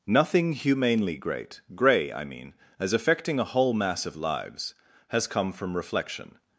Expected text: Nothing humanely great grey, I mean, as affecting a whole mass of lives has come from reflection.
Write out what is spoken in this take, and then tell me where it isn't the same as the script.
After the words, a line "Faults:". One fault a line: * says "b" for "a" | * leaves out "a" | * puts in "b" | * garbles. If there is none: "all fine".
Nothing humanely great grey, I mean, as affecting a whole mass of lives has come from reflection.
Faults:
all fine